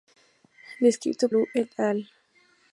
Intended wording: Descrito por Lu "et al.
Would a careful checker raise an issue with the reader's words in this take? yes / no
yes